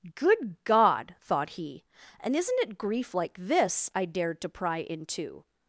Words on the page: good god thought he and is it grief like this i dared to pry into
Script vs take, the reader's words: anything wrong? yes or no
yes